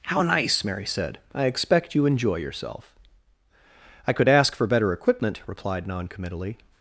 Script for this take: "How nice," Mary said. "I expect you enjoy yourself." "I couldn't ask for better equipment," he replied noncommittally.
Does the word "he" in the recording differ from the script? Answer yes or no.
yes